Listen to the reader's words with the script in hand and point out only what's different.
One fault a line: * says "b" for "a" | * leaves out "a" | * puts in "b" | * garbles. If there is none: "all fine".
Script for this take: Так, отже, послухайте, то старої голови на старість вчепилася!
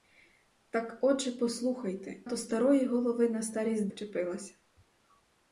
all fine